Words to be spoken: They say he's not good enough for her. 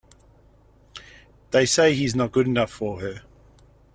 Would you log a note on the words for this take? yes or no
no